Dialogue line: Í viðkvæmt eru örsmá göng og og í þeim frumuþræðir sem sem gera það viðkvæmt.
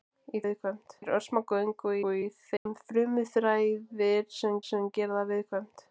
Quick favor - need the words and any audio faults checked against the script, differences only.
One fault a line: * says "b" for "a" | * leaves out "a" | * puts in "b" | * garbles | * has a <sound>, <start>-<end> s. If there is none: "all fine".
* has a dropout, 2.6-2.7 s